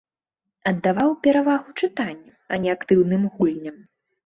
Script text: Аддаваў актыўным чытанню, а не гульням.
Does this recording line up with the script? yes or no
no